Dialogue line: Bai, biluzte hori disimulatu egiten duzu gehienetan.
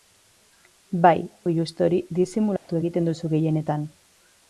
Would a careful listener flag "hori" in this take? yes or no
no